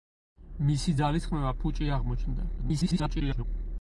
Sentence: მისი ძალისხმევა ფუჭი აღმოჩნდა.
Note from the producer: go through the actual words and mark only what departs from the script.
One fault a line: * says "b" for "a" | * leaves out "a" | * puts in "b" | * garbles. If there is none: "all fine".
* garbles